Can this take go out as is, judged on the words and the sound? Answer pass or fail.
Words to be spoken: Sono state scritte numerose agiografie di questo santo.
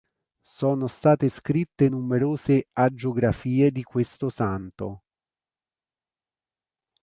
pass